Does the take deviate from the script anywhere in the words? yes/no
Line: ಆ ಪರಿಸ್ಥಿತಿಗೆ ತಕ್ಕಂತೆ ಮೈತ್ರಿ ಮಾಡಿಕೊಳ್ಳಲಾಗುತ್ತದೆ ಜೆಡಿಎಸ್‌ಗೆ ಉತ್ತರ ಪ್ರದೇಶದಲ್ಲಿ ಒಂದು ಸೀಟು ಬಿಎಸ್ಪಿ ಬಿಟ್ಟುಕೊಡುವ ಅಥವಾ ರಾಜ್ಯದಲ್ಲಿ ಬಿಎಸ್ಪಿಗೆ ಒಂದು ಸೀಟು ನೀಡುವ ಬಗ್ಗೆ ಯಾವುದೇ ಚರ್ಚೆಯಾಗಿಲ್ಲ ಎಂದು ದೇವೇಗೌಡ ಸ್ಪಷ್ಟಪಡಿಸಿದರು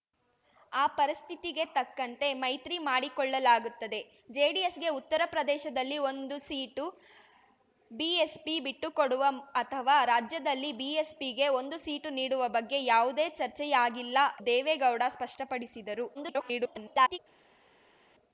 yes